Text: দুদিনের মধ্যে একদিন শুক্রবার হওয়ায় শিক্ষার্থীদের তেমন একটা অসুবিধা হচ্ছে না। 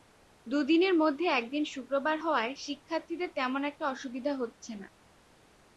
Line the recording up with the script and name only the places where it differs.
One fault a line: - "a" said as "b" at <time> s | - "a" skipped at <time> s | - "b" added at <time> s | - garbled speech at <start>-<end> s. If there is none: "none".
none